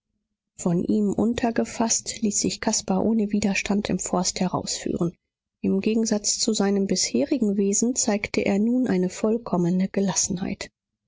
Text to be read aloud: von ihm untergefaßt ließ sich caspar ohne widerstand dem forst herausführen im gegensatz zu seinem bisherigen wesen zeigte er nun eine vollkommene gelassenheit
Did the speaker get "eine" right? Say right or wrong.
right